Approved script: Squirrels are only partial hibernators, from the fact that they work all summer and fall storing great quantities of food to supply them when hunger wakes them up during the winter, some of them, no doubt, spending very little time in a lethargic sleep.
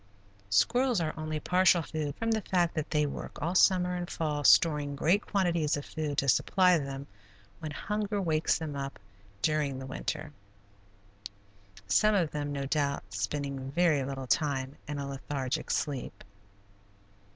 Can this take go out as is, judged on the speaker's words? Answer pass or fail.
fail